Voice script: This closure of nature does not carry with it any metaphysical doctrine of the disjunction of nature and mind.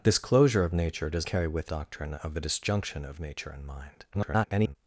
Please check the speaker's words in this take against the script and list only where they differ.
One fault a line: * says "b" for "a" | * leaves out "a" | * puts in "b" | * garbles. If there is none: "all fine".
* leaves out "not"
* leaves out "it any metaphysical"
* garbles